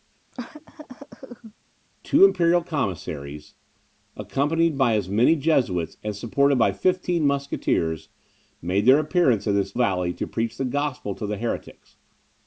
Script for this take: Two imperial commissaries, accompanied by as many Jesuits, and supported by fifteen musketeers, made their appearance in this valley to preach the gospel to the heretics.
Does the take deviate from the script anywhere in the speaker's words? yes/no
no